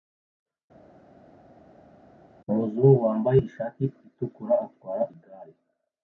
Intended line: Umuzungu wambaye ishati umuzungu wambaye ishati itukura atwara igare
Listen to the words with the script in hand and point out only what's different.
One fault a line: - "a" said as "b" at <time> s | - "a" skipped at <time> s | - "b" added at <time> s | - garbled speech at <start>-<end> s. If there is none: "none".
- "umuzungu wambaye ishati" skipped at 3.8 s